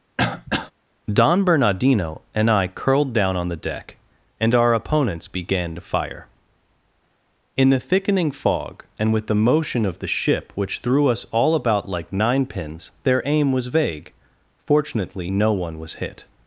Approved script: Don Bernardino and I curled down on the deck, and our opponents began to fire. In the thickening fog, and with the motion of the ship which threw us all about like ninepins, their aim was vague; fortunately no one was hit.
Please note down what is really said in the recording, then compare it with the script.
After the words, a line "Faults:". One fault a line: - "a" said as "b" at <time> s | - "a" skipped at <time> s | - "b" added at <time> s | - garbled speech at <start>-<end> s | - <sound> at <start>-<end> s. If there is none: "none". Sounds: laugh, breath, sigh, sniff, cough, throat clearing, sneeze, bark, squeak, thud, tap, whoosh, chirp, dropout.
Don Bernardino and I curled down on the deck, and our opponents began to fire. In the thickening fog, and with the motion of the ship which threw us all about like ninepins, their aim was vague; fortunately no one was hit.
Faults:
- throat clearing at 0.2-0.7 s